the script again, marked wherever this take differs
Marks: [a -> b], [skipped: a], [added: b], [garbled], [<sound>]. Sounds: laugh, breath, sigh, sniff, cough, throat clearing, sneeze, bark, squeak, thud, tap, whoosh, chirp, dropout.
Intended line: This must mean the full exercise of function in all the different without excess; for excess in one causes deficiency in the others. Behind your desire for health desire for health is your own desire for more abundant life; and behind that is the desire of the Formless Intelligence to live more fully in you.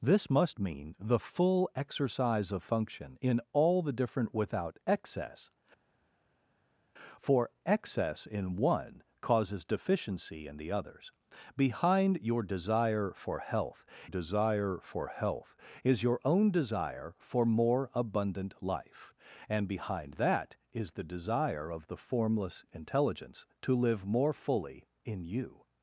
This must mean the full exercise of function in all the different without excess; for excess in one causes deficiency in the others. Behind your desire for health desire for health is your own desire for more abundant life; and behind that is the desire of the Formless Intelligence to live more fully in you.